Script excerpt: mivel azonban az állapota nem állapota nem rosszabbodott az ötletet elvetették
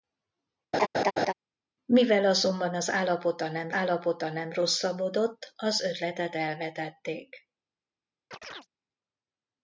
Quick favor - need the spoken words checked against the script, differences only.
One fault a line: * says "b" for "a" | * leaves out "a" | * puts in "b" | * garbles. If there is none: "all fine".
all fine